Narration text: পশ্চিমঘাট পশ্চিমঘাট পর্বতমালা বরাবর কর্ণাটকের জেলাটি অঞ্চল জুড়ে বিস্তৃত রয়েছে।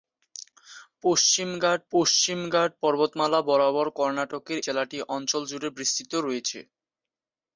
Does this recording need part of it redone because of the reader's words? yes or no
no